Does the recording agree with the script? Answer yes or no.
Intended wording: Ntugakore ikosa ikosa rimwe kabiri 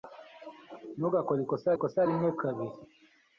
yes